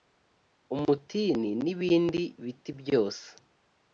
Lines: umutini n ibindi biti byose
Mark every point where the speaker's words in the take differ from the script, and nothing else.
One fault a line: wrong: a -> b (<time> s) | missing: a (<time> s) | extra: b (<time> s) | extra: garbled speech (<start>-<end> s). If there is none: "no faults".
no faults